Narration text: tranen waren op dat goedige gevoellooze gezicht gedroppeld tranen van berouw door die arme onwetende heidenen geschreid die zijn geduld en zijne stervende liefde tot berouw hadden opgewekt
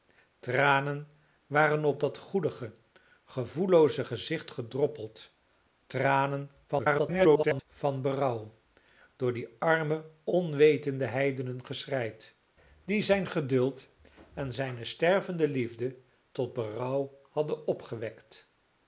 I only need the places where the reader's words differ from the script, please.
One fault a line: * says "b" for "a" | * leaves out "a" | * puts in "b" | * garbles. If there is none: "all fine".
* garbles